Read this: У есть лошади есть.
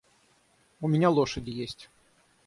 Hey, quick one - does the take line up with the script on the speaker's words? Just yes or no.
no